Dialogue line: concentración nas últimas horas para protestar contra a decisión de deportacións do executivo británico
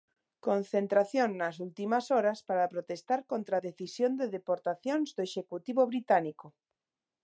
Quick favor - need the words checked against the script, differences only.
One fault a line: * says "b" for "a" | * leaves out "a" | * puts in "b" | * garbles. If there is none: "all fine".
all fine